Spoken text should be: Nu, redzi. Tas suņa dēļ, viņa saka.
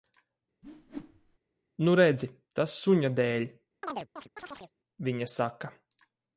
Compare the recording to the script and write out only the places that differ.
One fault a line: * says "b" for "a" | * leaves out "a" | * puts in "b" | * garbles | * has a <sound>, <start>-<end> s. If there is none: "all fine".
* has a whoosh, 0.6-1.4 s
* has a chirp, 3.8-4.7 s